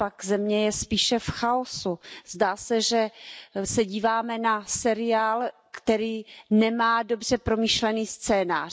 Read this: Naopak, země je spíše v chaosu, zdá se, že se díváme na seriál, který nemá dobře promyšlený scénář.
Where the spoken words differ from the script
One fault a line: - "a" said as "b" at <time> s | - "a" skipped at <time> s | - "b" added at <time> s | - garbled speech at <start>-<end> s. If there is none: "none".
none